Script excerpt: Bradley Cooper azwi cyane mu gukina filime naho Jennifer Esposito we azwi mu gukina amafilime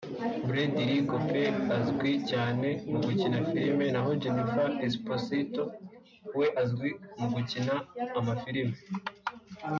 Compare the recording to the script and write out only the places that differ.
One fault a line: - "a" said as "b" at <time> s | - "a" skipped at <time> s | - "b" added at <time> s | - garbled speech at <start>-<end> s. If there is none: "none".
none